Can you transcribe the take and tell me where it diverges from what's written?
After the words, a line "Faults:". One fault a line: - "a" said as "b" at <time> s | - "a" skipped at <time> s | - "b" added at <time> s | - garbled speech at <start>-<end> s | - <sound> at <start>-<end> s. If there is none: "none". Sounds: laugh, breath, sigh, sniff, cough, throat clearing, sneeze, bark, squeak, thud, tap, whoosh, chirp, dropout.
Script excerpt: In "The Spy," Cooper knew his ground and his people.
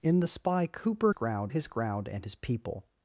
In "The Spy," Cooper ground his ground and his people.
Faults:
- "knew" said as "ground" at 1.1 s